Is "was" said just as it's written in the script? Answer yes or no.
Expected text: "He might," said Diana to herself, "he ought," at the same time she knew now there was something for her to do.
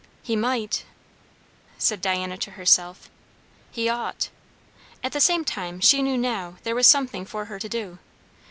yes